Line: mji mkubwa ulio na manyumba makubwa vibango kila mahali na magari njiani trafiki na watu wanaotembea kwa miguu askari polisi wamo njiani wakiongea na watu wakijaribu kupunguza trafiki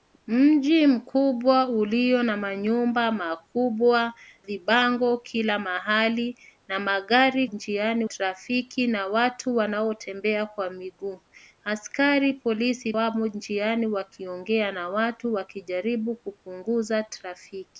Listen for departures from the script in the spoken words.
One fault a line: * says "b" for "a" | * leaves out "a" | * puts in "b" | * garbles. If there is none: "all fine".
all fine